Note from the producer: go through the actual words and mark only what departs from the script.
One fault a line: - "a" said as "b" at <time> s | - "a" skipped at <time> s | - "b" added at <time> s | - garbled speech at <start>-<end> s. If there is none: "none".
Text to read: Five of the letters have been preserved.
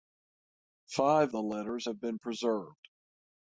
- "of" skipped at 1.3 s